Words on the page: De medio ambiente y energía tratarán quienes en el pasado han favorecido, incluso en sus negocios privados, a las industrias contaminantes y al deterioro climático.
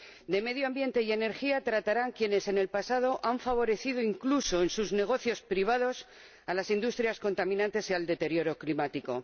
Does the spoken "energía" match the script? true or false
true